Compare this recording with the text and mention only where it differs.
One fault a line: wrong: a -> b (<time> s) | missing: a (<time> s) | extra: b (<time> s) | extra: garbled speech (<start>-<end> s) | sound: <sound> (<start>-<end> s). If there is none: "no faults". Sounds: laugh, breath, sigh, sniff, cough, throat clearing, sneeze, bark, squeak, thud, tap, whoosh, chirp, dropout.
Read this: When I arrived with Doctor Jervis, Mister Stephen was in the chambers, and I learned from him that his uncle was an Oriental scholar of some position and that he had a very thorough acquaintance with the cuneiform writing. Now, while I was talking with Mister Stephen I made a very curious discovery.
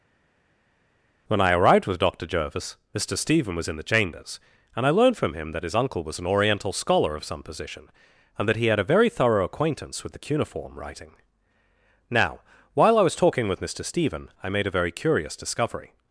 no faults